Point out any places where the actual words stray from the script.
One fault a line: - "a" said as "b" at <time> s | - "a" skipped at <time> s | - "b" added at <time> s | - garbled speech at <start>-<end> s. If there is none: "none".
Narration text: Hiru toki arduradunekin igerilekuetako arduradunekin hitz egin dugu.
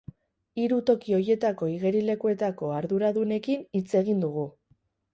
- "arduradunekin" said as "horietako" at 1.2 s